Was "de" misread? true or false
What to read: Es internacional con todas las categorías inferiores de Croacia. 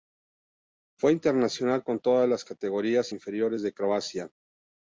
false